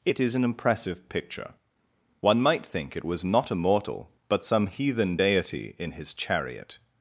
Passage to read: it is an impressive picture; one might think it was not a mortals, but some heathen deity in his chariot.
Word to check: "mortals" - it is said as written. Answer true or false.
false